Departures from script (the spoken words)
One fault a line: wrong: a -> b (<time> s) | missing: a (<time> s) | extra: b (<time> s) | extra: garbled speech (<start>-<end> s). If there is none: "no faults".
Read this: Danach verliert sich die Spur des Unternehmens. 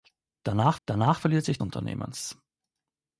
extra: danach (0.8 s)
missing: die Spur des (1.6 s)